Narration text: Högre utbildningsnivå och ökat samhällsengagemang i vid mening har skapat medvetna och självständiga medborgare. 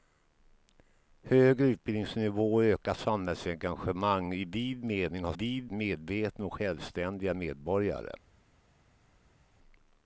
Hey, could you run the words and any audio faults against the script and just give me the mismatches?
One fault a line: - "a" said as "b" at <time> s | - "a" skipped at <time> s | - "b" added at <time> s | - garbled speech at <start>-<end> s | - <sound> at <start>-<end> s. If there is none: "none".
- "skapat" said as "vid" at 5.3 s